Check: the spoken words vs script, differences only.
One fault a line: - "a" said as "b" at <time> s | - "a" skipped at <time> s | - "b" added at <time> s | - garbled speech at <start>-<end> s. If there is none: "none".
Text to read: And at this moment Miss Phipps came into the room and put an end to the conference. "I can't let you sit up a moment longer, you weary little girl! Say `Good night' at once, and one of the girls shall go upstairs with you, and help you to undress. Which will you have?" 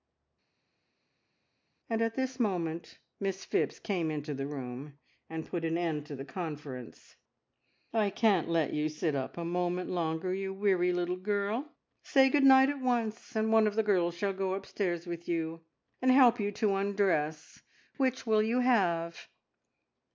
none